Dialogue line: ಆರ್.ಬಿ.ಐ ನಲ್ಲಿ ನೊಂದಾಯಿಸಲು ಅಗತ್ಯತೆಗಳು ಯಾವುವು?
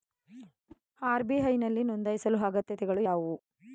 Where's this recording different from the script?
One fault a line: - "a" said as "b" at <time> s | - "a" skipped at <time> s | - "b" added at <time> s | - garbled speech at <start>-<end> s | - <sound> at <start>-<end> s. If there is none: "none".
- whoosh at 0.7-0.8 s